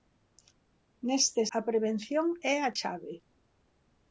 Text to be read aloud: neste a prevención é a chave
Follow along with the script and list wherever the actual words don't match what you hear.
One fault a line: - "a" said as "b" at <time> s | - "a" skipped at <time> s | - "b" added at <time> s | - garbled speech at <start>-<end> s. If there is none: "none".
none